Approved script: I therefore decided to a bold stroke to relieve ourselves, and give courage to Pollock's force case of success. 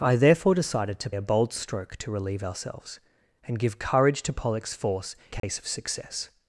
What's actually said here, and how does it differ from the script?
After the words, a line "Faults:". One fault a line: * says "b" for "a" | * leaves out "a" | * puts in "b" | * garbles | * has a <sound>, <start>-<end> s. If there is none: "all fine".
I therefore decided to a bold stroke to relieve ourselves, and give courage to Pollock's force case of success.
Faults:
* has a dropout, 5.4-5.4 s